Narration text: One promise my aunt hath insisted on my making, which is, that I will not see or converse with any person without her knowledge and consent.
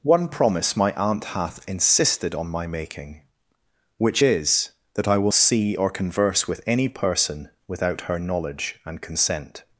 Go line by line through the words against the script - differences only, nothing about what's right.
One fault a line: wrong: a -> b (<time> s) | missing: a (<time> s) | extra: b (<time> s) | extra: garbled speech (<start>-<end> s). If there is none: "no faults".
missing: not (5.3 s)